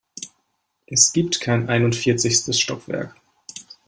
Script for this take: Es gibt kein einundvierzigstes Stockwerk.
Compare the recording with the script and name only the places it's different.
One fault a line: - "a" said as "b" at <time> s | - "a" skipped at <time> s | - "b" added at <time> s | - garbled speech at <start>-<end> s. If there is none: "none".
none